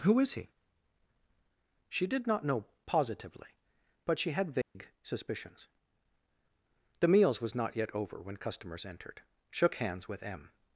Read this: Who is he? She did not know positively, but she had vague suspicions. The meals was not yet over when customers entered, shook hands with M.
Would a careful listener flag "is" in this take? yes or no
no